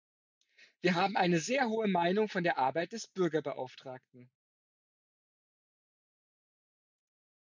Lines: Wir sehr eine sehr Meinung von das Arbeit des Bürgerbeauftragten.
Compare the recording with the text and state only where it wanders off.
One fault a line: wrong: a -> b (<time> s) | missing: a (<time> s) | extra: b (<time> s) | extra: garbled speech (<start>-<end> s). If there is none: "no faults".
wrong: sehr -> haben (0.9 s)
extra: hohe (1.7 s)
wrong: das -> der (2.4 s)